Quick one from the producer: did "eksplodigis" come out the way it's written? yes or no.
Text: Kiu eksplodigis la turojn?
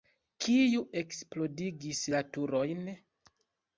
yes